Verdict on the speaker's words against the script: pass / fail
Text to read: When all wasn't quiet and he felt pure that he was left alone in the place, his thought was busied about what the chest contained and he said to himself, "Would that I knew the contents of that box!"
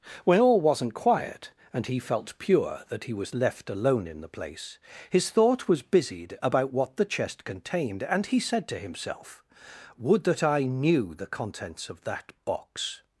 pass